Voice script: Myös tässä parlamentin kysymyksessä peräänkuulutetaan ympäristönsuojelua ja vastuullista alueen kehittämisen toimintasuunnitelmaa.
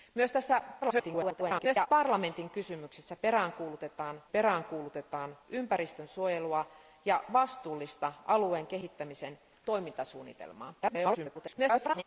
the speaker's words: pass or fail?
fail